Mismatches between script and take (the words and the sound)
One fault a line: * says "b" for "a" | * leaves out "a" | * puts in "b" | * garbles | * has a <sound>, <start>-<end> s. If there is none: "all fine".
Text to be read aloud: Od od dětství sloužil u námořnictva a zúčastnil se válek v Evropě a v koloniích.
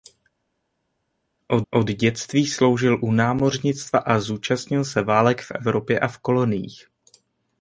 all fine